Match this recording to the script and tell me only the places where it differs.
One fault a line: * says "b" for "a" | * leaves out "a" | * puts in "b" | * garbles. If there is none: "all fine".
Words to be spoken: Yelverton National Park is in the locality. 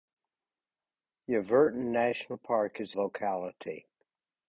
* leaves out "in the"